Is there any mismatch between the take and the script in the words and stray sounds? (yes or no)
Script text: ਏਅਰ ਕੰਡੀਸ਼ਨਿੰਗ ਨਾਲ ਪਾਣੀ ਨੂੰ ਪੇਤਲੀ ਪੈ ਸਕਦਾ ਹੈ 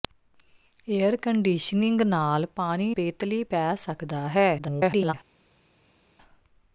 yes